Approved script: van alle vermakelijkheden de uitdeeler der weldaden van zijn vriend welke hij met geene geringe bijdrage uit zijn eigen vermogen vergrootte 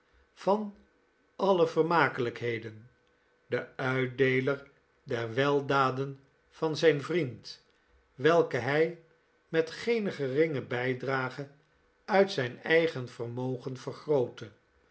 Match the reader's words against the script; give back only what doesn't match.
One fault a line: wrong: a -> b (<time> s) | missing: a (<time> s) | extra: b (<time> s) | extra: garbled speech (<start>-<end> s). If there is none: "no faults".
no faults